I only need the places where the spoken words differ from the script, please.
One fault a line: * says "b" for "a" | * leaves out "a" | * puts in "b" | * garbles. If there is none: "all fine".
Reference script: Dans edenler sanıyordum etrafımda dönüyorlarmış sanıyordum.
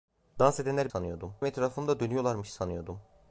all fine